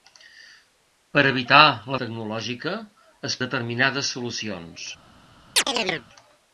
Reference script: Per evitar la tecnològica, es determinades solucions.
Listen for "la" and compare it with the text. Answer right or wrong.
right